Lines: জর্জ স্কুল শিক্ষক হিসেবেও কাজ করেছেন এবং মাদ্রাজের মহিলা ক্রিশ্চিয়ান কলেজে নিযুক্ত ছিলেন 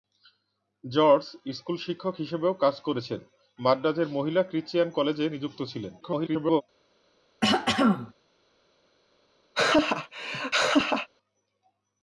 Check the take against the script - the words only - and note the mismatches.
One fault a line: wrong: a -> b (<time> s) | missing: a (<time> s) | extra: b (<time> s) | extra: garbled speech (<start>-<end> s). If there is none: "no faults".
missing: এবং (3.2 s)
extra: garbled speech (6.0-6.6 s)